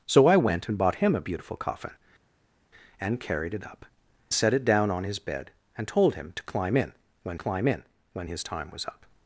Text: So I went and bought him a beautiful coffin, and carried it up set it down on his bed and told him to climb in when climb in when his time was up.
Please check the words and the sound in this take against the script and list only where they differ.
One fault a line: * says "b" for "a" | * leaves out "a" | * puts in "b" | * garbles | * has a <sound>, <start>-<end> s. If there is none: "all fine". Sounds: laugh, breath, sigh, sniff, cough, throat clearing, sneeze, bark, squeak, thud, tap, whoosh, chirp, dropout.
all fine